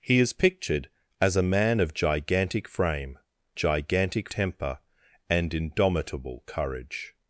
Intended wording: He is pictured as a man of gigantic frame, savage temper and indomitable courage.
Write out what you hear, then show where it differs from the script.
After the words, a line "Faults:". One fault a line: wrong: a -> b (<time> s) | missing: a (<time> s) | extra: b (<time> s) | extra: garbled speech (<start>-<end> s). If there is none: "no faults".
He is pictured as a man of gigantic frame, gigantic temper and indomitable courage.
Faults:
wrong: savage -> gigantic (3.5 s)